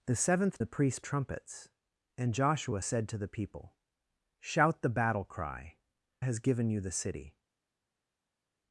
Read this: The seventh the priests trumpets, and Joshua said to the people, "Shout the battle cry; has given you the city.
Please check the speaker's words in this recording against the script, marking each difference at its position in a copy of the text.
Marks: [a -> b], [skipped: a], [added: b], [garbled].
The seventh the priests trumpets, and Joshua said to the people, "Shout the battle cry; has given you the city.